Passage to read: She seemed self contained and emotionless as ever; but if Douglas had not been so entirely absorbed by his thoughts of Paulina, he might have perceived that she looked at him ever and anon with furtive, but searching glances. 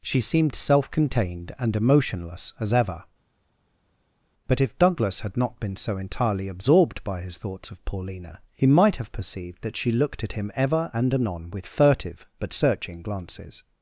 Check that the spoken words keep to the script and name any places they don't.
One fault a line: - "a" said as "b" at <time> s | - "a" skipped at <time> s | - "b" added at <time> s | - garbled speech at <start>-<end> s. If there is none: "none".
none